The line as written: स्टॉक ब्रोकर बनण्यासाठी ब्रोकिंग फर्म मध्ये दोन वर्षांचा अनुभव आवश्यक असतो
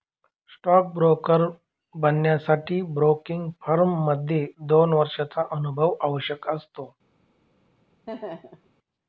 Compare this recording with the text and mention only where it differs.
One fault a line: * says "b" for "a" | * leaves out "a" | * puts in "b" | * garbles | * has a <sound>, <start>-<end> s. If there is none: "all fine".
* has a laugh, 8.1-8.7 s